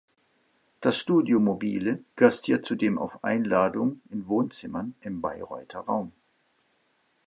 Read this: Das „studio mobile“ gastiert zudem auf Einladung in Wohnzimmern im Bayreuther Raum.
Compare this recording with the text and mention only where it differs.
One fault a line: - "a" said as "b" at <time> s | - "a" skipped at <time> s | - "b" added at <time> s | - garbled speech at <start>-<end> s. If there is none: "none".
none